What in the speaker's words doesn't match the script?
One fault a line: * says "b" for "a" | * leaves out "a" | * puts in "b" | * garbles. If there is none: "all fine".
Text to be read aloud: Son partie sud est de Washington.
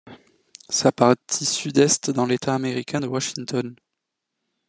* says "Sa" for "Son"
* puts in "dans l'État américain"